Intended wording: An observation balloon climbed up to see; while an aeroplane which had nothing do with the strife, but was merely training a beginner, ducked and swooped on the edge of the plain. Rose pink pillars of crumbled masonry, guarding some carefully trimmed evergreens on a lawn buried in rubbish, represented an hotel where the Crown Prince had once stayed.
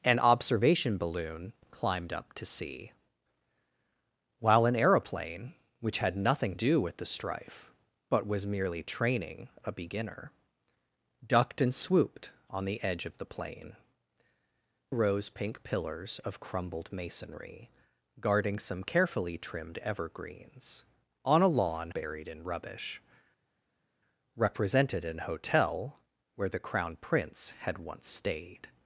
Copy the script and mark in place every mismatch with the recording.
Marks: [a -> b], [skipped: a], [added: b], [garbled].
An observation balloon climbed up to see; while an aeroplane which had nothing do with the strife, but was merely training a beginner, ducked and swooped on the edge of the plain. Rose pink pillars of crumbled masonry, guarding some carefully trimmed evergreens on a lawn buried in rubbish, represented an hotel where the Crown Prince had once stayed.